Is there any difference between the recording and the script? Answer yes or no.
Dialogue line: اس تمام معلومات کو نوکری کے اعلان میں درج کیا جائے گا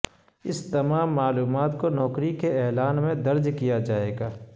no